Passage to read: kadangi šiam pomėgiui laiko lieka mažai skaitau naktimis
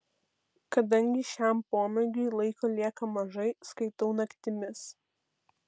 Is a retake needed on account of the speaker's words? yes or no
no